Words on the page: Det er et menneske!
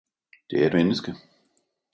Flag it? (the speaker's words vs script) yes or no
no